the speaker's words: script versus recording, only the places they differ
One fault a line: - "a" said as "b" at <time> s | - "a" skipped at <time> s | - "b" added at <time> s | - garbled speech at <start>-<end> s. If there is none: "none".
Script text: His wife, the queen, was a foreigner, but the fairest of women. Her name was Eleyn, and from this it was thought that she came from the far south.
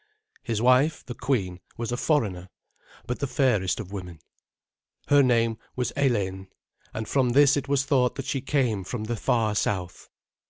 none